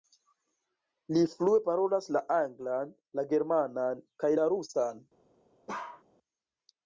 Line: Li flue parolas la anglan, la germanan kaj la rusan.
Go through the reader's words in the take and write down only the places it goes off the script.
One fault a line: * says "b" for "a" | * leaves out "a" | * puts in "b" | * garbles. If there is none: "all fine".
all fine